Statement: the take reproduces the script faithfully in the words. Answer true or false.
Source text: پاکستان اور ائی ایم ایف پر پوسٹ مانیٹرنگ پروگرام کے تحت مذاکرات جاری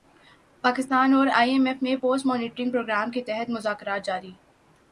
false